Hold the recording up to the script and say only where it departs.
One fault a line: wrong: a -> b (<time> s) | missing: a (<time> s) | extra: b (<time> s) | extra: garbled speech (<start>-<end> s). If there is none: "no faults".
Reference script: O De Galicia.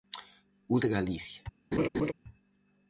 no faults